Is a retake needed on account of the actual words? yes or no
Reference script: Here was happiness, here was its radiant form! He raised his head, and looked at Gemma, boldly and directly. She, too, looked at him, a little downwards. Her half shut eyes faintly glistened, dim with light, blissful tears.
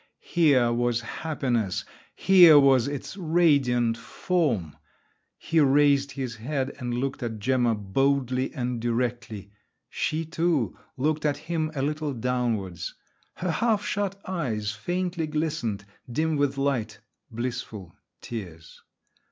no